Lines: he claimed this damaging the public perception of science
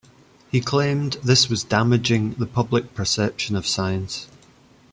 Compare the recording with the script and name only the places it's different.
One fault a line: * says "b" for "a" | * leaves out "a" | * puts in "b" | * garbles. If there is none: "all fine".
* puts in "was"